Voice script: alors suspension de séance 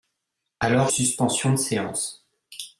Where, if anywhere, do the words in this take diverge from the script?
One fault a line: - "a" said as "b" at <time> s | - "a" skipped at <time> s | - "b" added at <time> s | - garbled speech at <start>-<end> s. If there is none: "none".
none